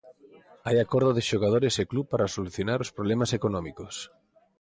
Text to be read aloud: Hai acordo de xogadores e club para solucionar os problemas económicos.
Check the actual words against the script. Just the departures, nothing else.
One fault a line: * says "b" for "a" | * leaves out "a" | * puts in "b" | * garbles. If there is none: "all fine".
all fine